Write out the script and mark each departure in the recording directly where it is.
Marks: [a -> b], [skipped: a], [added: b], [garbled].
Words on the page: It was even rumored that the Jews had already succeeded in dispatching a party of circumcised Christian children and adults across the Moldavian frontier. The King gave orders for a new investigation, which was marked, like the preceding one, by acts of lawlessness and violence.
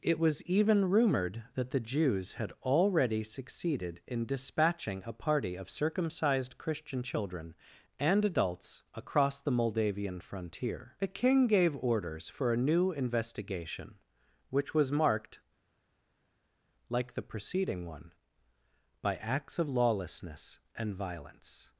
It was even rumored that the Jews had already succeeded in dispatching a party of circumcised Christian children and adults across the Moldavian frontier. The King gave orders for a new investigation, which was marked, like the preceding one, by acts of lawlessness and violence.